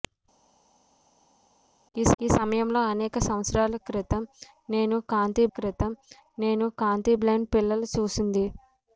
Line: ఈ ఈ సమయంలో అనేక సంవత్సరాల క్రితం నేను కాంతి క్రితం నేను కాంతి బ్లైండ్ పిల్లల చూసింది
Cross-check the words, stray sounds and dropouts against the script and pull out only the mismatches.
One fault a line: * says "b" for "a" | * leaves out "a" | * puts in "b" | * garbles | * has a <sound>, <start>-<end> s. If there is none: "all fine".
all fine